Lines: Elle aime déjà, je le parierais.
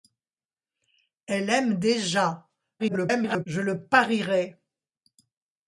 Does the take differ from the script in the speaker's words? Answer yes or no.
yes